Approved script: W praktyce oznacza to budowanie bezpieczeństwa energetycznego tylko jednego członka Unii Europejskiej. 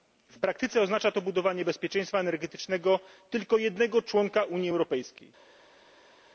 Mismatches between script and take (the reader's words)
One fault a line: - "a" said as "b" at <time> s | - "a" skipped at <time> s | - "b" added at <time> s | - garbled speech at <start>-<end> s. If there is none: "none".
none